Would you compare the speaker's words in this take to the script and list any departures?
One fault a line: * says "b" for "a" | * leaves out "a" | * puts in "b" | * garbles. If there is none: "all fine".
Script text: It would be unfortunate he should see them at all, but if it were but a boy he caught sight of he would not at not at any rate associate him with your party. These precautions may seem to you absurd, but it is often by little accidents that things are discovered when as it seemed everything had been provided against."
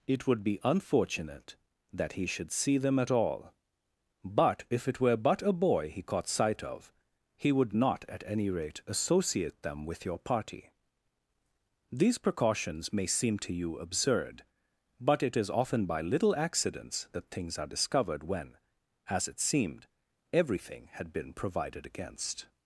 * puts in "that"
* leaves out "not at"
* says "them" for "him"